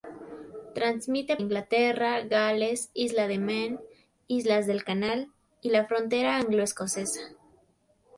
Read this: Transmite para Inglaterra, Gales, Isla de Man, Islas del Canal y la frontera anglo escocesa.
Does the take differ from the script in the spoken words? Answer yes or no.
yes